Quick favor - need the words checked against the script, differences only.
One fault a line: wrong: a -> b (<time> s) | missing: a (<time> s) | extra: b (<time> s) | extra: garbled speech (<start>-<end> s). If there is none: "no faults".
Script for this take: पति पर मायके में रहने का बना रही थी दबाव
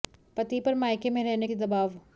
missing: का बना रही (1.5 s)